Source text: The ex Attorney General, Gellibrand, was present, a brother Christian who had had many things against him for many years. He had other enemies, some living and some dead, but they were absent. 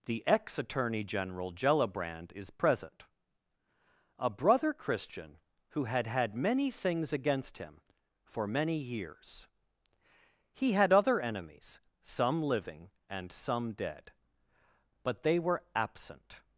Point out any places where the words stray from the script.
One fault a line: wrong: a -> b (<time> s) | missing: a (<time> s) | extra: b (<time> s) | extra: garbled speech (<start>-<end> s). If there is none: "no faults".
wrong: was -> is (2.3 s)